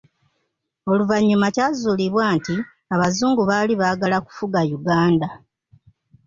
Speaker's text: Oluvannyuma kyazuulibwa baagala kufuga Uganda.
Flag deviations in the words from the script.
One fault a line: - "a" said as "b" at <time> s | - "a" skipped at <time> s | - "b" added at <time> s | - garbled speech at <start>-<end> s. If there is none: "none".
- "nti abazungu baali" added at 2.4 s